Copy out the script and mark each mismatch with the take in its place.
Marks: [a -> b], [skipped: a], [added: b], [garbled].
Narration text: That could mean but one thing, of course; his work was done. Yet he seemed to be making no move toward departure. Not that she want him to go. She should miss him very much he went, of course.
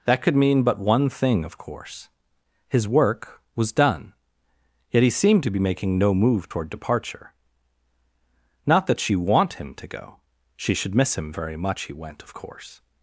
That could mean but one thing, of course; his work was done. Yet he seemed to be making no move toward departure. Not that she want him to go. She should miss him very much he went, of course.